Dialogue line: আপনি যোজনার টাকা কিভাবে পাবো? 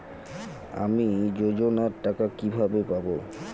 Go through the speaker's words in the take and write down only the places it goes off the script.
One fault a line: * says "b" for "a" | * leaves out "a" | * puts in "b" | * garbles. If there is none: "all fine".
* says "আমি" for "আপনি"